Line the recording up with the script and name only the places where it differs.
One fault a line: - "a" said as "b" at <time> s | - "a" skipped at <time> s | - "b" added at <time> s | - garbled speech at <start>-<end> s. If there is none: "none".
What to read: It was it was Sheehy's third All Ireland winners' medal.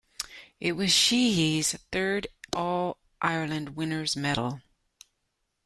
- "it was" skipped at 0.9 s